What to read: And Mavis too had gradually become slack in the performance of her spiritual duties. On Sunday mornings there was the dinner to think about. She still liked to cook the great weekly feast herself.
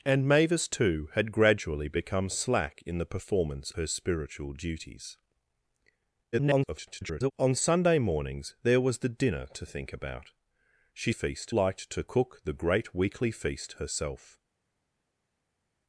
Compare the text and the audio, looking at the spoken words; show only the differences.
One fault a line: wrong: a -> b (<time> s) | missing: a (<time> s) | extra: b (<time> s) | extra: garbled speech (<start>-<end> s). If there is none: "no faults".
missing: of (3.7 s)
extra: garbled speech (6.3-7.3 s)
wrong: still -> feast (11.1 s)